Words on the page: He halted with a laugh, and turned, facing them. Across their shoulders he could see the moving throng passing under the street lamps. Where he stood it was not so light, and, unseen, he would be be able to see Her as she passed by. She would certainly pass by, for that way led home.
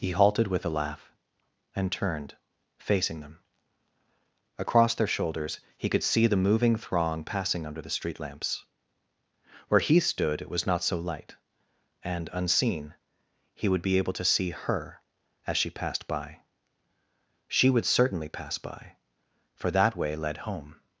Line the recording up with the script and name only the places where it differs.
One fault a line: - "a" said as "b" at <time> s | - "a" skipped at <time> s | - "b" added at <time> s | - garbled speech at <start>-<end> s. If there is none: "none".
- "be" skipped at 14.0 s